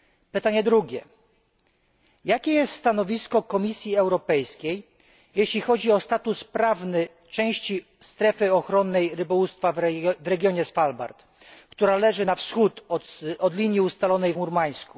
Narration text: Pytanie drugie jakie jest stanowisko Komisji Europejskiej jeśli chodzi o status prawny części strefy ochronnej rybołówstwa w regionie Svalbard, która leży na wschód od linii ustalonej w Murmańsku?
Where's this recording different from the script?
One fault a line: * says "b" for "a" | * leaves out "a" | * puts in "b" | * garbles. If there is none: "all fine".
all fine